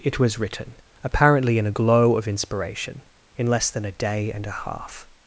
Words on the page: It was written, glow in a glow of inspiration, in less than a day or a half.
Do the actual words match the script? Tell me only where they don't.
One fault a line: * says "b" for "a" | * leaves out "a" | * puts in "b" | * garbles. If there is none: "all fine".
* says "apparently" for "glow"
* says "and" for "or"